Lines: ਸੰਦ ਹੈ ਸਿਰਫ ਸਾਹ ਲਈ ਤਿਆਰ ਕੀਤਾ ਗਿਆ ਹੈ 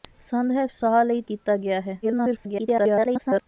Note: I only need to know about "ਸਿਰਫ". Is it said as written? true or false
false